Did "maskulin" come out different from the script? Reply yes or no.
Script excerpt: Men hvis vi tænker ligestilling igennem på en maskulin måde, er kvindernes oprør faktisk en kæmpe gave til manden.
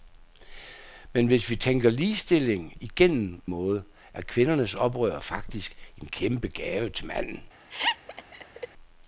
yes